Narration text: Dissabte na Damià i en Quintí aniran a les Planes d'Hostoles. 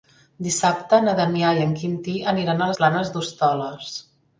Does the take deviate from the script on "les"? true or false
true